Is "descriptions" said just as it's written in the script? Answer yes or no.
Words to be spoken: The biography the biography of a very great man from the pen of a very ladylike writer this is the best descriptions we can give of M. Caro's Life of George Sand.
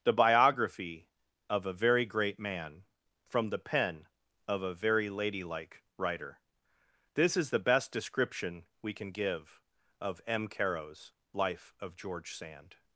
no